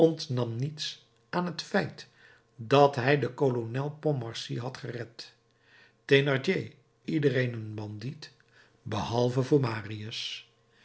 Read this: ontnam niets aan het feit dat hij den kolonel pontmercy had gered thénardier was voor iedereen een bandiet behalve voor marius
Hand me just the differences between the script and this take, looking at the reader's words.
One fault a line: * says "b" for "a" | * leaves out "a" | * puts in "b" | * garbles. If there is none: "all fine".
* leaves out "was voor"